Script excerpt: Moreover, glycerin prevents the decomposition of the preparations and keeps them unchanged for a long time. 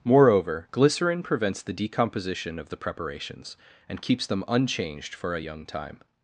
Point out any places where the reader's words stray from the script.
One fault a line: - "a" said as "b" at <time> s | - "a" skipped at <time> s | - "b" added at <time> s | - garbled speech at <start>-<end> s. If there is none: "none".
- "long" said as "young" at 5.4 s